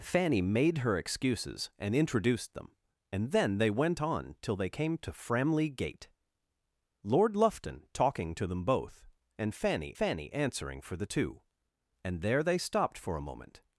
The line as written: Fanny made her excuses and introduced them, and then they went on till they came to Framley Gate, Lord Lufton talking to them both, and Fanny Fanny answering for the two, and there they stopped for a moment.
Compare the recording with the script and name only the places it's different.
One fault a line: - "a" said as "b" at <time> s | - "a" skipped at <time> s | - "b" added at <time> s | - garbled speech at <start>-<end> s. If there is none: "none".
none